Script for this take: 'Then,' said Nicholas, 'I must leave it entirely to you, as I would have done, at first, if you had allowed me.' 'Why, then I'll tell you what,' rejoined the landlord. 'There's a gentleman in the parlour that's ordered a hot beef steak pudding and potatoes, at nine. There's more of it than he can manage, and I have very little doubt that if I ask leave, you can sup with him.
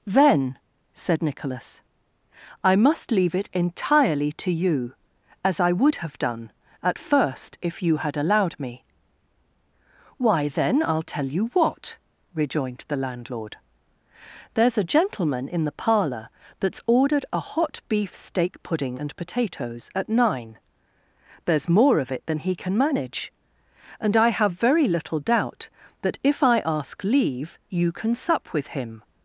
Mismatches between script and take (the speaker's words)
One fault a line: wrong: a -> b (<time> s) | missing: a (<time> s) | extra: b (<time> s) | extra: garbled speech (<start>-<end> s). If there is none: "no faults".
no faults